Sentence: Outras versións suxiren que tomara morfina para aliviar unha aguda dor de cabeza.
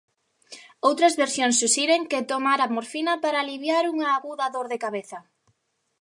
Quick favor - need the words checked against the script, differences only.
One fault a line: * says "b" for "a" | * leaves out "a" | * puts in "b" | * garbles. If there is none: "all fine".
all fine